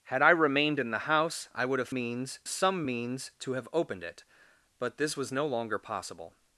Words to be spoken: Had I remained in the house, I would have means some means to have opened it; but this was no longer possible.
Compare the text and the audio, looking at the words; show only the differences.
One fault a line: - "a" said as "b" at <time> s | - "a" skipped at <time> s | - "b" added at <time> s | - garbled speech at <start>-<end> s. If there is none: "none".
none